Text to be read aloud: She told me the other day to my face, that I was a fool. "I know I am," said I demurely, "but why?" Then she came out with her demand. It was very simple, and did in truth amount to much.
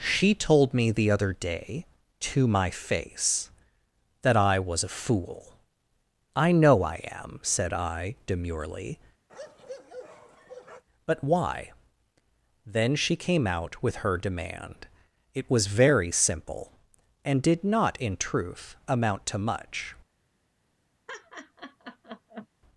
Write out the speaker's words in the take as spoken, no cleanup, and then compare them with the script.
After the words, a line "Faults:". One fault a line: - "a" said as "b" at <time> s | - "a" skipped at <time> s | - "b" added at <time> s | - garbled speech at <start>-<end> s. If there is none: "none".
She told me the other day to my face, that I was a fool. "I know I am," said I demurely, "but why?" Then she came out with her demand. It was very simple, and did not in truth amount to much.
Faults:
- "not" added at 17.6 s